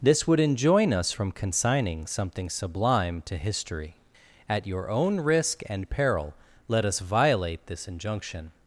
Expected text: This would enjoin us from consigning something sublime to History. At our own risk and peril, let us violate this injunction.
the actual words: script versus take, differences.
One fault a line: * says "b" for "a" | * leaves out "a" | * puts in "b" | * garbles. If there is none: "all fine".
* says "your" for "our"